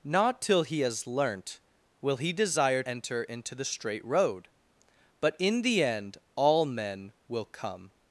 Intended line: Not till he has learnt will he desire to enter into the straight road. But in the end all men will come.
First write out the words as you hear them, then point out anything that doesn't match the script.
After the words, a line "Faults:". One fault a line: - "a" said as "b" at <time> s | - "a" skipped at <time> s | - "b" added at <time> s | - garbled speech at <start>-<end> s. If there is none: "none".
Not till he has learnt will he desire enter into the straight road. But in the end all men will come.
Faults:
- "to" skipped at 2.8 s